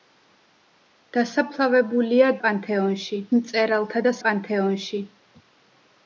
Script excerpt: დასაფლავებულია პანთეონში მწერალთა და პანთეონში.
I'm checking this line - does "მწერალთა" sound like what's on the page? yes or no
yes